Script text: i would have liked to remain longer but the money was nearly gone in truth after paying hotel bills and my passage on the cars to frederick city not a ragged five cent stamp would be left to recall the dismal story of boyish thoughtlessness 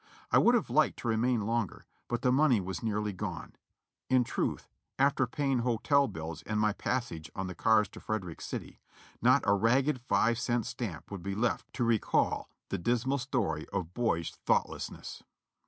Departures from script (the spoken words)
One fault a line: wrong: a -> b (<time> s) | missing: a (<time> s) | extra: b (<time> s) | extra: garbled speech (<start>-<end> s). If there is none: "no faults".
no faults